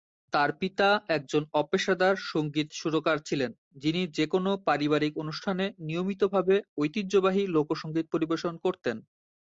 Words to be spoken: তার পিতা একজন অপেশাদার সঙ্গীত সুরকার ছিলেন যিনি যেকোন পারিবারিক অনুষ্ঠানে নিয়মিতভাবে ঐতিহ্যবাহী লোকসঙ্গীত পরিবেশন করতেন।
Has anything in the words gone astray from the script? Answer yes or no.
no